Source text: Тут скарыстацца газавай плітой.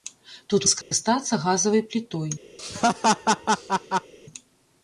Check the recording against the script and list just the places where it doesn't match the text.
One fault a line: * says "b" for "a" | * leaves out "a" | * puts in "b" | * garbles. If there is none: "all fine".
all fine